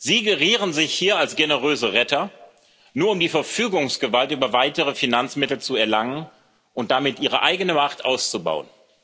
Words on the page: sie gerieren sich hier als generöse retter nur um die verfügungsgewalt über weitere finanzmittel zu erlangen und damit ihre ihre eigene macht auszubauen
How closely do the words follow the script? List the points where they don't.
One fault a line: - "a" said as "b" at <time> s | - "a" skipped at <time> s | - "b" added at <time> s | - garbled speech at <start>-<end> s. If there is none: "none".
- "ihre" skipped at 7.4 s